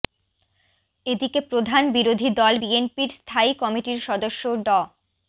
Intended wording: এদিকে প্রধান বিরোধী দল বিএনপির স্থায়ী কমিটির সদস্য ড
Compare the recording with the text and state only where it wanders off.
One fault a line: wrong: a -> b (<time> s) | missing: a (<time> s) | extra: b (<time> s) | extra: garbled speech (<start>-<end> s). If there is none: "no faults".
no faults